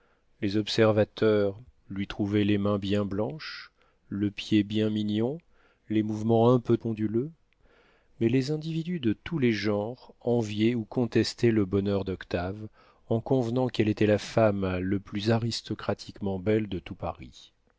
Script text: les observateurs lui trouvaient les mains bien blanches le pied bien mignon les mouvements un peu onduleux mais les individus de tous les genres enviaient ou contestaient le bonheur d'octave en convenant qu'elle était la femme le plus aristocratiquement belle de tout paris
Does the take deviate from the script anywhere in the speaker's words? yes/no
no